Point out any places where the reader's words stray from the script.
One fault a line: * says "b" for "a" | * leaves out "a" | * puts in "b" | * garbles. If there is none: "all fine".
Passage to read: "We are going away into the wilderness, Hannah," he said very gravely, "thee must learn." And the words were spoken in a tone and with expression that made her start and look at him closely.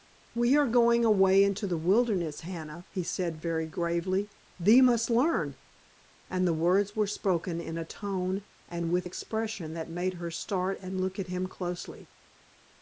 all fine